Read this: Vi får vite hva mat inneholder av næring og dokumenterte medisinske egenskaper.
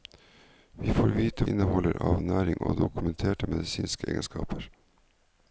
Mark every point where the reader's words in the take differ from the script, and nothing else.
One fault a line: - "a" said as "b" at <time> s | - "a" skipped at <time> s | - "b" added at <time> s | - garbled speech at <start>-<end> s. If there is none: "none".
- "hva mat" skipped at 1.4 s